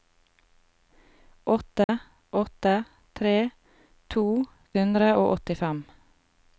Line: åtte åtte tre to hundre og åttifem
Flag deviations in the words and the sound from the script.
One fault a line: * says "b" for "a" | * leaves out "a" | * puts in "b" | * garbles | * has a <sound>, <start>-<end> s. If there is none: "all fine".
* has a dropout, 1.8-1.9 s